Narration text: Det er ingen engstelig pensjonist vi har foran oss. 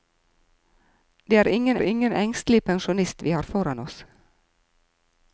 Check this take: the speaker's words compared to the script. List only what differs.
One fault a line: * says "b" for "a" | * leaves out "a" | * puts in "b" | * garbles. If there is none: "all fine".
* puts in "ingen"